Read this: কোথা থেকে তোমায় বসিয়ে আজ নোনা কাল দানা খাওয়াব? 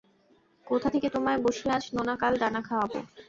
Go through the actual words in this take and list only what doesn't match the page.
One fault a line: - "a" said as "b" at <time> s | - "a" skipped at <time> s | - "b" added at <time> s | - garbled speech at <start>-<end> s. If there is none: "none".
none